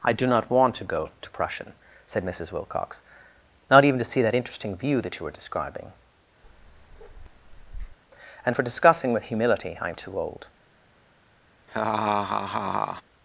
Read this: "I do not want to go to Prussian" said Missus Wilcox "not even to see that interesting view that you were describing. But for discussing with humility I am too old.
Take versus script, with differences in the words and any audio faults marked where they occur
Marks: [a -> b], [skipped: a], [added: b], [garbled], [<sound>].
"I do not want to go to Prussian" said Missus Wilcox "not even to see that interesting view that you were describing. [bark] [But -> And] for discussing with humility I am too old. [laugh]